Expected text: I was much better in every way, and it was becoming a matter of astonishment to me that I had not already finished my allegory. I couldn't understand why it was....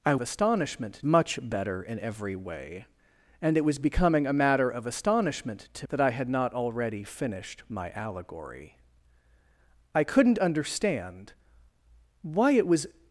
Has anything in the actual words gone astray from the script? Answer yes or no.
yes